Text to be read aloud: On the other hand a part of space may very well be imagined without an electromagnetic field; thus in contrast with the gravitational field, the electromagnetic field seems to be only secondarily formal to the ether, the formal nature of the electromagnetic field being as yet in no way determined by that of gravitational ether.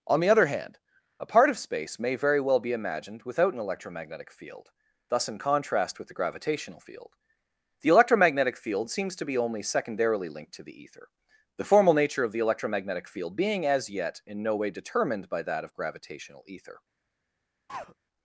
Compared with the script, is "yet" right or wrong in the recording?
right